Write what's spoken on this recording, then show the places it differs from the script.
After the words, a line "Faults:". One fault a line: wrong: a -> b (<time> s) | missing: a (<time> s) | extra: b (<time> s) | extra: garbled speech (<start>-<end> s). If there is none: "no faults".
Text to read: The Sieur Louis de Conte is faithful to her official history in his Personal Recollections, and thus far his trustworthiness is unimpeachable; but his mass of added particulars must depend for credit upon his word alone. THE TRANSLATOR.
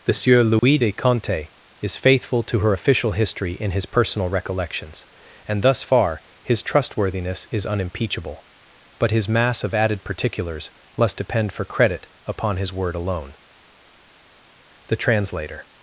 The Sieur Louis de Conte is faithful to her official history in his Personal Recollections, and thus far his trustworthiness is unimpeachable; but his mass of added particulars must depend for credit upon his word alone. THE TRANSLATOR.
Faults:
no faults